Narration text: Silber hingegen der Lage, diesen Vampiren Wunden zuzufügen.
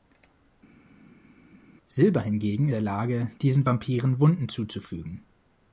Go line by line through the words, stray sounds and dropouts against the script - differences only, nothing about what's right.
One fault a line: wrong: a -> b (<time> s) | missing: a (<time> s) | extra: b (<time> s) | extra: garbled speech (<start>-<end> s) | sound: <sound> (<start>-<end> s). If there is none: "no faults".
no faults